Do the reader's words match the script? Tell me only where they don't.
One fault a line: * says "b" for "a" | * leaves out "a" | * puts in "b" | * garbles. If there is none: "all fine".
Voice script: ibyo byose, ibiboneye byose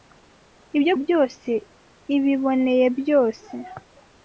all fine